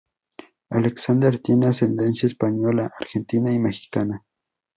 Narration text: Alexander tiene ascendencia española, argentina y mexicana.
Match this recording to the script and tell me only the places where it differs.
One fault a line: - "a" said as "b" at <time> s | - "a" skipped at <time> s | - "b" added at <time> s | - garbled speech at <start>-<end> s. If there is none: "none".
none